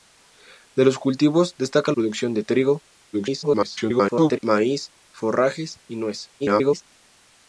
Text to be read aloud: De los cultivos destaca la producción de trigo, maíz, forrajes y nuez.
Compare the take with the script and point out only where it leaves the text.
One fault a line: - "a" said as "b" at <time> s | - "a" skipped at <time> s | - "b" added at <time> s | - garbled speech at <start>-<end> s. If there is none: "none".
- "la" skipped at 1.9 s
- garbled speech at 3.1-4.4 s
- garbled speech at 6.4-6.8 s